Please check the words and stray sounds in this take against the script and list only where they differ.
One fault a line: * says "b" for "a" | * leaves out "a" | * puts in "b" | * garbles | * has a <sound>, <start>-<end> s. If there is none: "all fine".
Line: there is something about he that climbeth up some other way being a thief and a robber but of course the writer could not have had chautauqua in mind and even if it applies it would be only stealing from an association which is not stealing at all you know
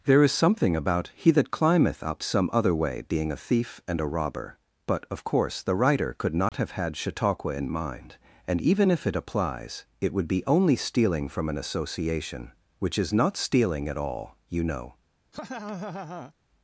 * has a dropout, 6.5-6.5 s
* has a laugh, 15.3-16.3 s